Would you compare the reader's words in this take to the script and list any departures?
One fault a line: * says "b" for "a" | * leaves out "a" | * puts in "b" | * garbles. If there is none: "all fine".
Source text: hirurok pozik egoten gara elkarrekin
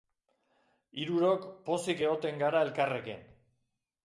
all fine